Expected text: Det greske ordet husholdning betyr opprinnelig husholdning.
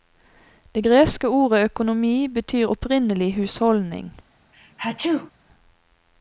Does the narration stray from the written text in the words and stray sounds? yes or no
yes